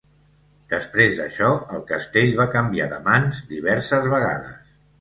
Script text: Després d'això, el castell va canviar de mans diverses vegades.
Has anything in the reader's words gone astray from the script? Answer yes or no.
no